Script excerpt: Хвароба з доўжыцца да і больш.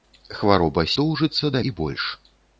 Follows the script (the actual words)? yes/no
yes